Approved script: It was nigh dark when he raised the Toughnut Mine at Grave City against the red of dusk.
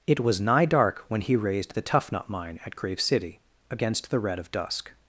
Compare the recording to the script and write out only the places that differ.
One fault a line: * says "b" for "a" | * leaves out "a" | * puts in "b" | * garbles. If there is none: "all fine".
all fine